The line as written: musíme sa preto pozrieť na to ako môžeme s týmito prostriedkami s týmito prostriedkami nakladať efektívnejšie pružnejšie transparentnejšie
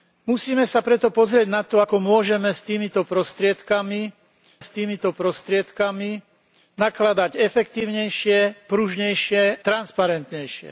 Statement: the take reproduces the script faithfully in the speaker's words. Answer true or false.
true